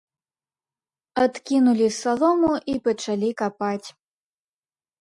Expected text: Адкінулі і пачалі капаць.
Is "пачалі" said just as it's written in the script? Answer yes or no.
yes